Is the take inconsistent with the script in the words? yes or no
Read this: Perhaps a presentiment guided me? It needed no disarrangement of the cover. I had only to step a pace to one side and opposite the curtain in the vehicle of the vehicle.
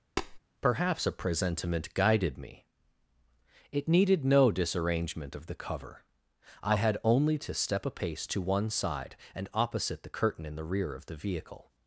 yes